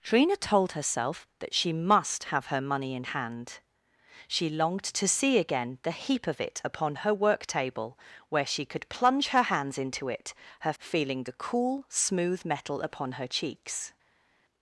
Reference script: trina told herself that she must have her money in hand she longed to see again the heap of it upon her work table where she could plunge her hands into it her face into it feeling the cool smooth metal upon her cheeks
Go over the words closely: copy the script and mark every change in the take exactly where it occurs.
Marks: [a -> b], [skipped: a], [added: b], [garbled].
trina told herself that she must have her money in hand she longed to see again the heap of it upon her work table where she could plunge her hands into it her [skipped: face into it] feeling the cool smooth metal upon her cheeks